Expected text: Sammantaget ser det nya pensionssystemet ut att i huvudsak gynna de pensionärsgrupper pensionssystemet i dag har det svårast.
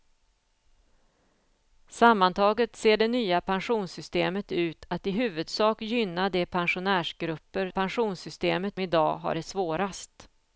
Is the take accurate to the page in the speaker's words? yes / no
yes